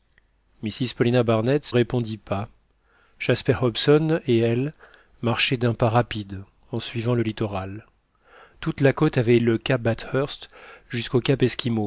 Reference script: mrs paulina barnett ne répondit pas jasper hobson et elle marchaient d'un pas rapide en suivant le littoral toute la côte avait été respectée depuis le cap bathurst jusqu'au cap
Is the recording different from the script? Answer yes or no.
yes